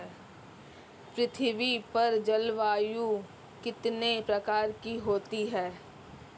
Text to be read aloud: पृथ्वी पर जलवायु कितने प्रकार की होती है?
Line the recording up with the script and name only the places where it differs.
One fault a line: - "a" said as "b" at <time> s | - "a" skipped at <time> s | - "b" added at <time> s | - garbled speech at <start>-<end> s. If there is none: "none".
none